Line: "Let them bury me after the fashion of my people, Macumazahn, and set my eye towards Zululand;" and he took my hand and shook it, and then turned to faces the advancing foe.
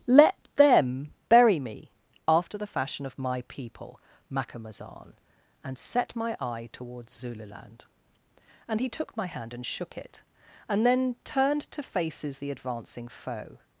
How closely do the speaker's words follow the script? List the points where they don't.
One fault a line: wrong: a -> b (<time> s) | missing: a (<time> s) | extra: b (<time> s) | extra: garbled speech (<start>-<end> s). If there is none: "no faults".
no faults